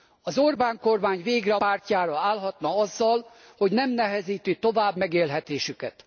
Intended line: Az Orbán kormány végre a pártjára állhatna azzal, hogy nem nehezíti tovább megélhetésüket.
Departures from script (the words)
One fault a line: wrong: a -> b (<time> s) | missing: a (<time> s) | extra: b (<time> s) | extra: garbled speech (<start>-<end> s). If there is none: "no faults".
no faults